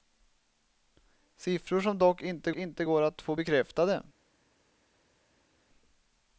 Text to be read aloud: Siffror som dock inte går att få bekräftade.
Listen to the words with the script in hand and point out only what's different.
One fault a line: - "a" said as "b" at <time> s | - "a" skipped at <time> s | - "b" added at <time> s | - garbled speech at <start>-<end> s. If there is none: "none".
- "inte" added at 2.5 s